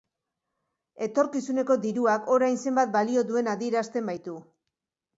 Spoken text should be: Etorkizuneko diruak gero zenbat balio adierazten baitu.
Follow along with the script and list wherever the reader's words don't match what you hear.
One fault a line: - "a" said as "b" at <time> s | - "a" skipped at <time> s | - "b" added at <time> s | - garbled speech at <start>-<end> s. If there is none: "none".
- "gero" said as "orain" at 2.4 s
- "duen" added at 3.3 s